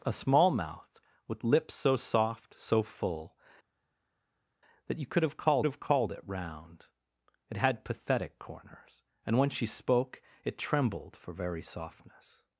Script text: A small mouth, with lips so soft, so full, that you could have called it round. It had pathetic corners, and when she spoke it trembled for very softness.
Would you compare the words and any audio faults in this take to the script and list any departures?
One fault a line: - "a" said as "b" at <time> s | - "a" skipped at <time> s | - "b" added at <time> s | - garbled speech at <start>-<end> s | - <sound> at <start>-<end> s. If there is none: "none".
- "have called" added at 5.6 s